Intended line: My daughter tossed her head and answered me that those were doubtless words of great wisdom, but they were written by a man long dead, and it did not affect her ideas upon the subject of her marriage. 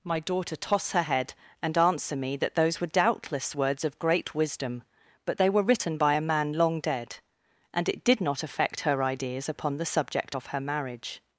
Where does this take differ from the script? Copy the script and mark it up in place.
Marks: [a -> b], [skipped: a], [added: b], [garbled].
My daughter [tossed -> toss] her head and [answered -> answer] me that those were doubtless words of great wisdom, but they were written by a man long dead, and it did not affect her ideas upon the subject of her marriage.